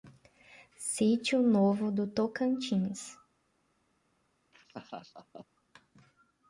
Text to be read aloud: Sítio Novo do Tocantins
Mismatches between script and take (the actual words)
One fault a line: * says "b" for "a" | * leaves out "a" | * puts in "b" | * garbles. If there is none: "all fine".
all fine